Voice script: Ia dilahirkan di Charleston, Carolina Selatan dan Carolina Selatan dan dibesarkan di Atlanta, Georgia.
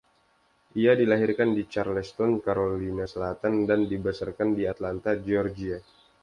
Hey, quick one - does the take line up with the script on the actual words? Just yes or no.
no